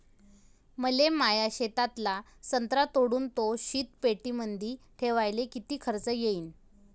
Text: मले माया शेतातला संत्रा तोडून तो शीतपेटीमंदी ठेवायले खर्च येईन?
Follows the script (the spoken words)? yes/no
no